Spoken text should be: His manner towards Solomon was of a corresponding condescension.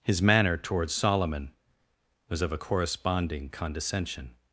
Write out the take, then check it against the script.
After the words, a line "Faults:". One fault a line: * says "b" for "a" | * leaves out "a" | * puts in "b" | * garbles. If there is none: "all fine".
His manner towards Solomon was of a corresponding condescension.
Faults:
all fine